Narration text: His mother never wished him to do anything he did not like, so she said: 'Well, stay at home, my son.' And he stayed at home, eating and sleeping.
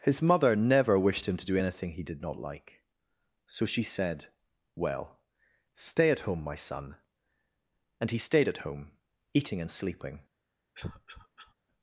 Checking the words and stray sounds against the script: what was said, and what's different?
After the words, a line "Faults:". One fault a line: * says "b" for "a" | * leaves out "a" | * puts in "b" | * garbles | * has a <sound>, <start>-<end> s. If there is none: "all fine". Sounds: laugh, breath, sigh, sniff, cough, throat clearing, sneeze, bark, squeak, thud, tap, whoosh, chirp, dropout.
His mother never wished him to do anything he did not like, so she said: 'Well, stay at home, my son.' And he stayed at home, eating and sleeping.
Faults:
* has a cough, 10.7-11.5 s